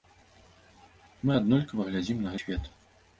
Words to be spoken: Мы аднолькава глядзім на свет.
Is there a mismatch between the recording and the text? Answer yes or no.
no